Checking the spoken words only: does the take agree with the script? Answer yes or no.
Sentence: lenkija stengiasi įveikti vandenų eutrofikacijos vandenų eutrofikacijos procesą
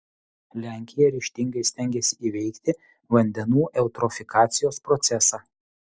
no